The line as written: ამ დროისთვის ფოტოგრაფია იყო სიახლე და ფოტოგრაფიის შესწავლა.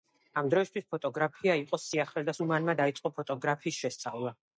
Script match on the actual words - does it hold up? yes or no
no